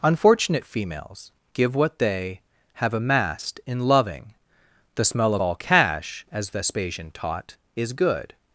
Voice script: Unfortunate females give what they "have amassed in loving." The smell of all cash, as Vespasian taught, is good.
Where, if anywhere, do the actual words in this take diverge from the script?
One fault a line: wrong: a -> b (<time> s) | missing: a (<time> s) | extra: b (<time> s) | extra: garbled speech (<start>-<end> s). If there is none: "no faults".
no faults